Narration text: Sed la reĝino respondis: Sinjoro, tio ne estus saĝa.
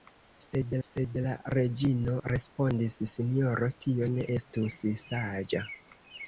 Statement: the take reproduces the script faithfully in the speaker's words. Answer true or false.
false